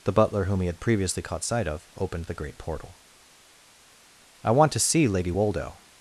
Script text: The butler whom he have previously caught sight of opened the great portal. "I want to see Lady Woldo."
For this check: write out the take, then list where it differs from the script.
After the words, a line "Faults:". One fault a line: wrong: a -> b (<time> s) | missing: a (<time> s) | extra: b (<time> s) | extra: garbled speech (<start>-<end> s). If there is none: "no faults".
The butler whom he had previously caught sight of opened the great portal. "I want to see Lady Woldo."
Faults:
wrong: have -> had (0.7 s)